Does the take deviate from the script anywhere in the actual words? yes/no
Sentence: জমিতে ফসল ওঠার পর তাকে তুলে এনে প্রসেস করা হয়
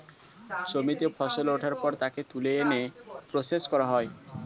no